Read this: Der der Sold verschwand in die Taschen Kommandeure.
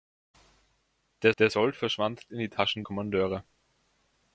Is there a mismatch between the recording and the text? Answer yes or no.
no